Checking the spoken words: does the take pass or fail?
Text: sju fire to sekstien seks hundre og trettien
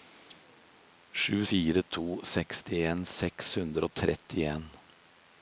pass